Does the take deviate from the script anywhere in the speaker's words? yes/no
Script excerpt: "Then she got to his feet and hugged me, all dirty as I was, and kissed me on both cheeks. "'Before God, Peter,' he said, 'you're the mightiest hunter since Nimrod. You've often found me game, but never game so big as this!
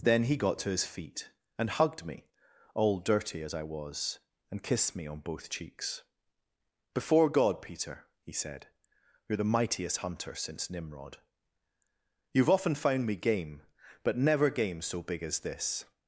yes